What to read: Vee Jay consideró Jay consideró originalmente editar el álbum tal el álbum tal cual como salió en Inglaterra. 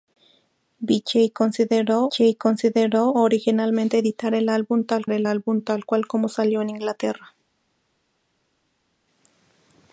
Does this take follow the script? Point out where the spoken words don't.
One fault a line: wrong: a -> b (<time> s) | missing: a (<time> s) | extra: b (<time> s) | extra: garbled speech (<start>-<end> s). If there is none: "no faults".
no faults